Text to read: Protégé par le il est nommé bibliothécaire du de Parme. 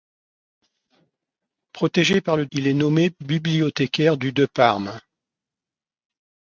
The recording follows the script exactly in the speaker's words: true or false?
true